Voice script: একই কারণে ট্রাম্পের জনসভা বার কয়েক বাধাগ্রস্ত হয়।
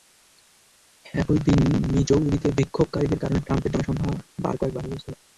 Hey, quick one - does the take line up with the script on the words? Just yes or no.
no